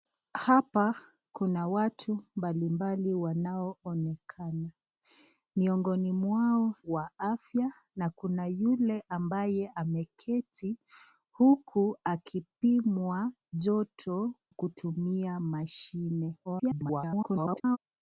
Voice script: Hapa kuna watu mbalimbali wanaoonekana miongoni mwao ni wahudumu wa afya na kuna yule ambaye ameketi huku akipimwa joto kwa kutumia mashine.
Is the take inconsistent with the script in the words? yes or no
yes